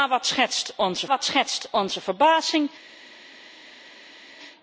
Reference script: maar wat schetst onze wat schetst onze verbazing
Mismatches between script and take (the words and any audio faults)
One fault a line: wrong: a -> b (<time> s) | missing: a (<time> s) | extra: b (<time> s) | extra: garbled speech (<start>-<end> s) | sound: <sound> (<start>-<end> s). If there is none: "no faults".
no faults